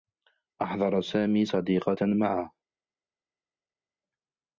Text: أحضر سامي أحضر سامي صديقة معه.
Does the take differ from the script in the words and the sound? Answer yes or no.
yes